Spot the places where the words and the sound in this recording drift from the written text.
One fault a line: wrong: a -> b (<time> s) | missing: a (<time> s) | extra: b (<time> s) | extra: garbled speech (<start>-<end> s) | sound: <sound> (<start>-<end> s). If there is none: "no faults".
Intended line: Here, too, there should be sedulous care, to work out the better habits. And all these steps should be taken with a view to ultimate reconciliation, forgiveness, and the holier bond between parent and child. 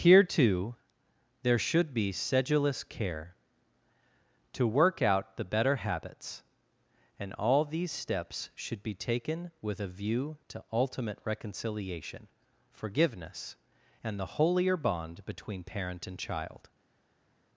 no faults